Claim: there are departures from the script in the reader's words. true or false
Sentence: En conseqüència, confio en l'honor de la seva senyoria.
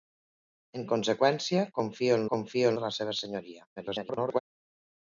true